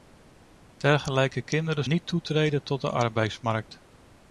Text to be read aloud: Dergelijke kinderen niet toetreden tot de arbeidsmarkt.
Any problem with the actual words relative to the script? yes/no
no